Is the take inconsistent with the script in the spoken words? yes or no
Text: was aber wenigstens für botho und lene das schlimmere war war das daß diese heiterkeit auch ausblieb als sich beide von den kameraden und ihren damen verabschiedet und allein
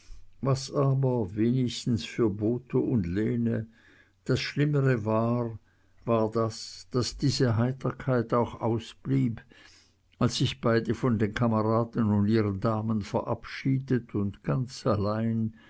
yes